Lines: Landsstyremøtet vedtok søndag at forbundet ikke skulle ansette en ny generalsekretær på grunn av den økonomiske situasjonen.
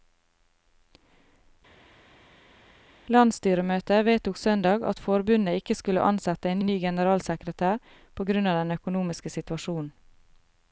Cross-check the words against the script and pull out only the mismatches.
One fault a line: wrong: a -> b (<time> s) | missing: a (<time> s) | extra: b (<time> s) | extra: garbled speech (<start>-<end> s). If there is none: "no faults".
extra: en (6.6 s)